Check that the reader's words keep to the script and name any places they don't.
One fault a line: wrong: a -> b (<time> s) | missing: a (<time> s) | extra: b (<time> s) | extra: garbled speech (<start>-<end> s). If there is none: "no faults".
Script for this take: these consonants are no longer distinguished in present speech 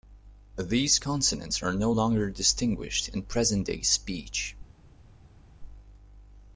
extra: day (3.7 s)